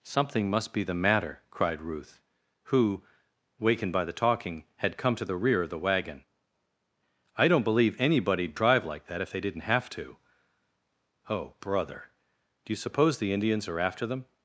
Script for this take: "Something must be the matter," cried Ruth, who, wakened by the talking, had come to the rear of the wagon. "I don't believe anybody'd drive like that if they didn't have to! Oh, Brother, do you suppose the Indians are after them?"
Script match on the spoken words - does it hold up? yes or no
yes